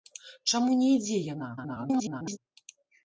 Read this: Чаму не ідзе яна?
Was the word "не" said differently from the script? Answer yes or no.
no